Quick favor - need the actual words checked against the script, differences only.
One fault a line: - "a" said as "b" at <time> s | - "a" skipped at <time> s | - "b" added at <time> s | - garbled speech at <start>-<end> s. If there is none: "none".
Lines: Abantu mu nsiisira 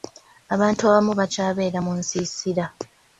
- "abamu bakyabeera" added at 0.9 s